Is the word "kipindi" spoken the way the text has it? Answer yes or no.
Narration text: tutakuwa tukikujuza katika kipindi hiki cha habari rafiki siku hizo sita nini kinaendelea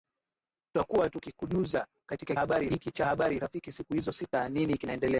no